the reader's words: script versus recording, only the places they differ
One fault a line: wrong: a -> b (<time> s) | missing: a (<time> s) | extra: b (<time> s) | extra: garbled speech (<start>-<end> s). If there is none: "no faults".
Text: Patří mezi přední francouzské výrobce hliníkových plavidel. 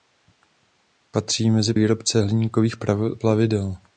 missing: přední francouzské (1.7 s)